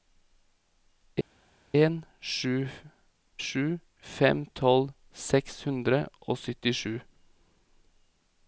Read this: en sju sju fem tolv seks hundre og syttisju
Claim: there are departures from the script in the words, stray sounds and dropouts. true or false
false